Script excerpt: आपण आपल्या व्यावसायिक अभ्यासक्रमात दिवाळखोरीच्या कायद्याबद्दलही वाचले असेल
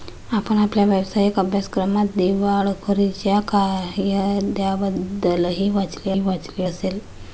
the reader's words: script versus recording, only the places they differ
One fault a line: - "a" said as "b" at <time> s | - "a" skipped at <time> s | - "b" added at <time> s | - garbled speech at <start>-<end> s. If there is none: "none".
- "वाचले" added at 6.2 s